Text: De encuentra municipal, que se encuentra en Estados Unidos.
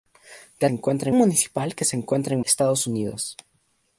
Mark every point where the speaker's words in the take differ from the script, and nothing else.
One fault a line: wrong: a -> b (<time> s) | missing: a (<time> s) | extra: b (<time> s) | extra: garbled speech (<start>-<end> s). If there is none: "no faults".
no faults